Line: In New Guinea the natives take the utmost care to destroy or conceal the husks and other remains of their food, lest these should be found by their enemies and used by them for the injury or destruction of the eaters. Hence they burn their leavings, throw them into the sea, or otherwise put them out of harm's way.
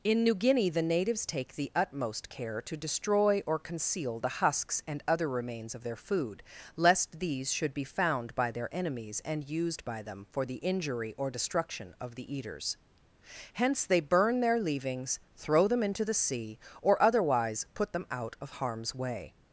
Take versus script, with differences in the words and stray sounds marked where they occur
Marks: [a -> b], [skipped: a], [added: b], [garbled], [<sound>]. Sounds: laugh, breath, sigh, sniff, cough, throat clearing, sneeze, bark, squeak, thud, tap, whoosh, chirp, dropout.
In New Guinea the natives take the utmost care to destroy or conceal the husks and other remains of their food, lest these should be found by their enemies and used by them for the injury or destruction of the eaters. Hence they burn their leavings, throw them into the sea, or otherwise put them out of harm's way.